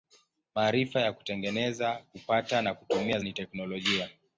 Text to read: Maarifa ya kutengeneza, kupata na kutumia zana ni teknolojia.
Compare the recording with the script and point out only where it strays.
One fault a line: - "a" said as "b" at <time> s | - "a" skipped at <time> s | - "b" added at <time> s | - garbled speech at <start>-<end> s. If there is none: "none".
- "zana" skipped at 3.2 s